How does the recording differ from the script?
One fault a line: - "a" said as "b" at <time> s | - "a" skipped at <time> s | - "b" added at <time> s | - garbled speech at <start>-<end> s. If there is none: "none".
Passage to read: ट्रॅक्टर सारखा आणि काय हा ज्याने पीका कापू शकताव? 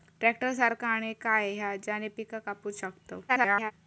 - garbled speech at 3.3-3.7 s